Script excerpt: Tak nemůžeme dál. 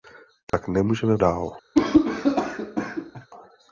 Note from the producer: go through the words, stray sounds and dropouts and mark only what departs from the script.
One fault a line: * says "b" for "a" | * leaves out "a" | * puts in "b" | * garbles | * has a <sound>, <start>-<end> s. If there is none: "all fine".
* has a dropout, 0.5-0.5 s
* has a cough, 1.7-3.3 s